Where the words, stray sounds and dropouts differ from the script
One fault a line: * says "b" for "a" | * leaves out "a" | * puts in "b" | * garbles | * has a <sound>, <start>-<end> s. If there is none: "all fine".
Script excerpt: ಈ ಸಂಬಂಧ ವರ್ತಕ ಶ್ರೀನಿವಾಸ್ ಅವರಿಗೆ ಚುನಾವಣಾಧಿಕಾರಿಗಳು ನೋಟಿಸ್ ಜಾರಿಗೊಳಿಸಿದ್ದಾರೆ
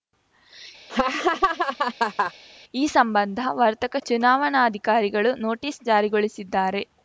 * has a laugh, 0.9-2.3 s
* leaves out "ಶ್ರೀನಿವಾಸ್ ಅವರಿಗೆ"